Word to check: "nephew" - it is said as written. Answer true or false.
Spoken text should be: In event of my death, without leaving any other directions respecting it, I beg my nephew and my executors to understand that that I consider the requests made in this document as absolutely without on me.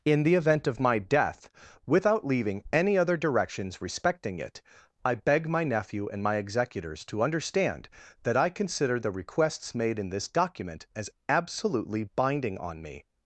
true